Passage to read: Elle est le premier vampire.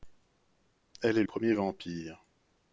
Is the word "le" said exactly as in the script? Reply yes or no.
no